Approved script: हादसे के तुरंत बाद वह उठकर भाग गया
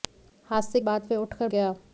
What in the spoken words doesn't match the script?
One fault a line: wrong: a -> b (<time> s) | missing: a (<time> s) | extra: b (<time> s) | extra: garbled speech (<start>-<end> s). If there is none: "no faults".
missing: के तुरंत (0.8 s)
missing: भाग (1.5 s)